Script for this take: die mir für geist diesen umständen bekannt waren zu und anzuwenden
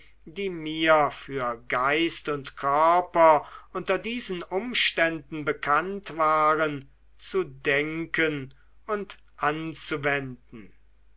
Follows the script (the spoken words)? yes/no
no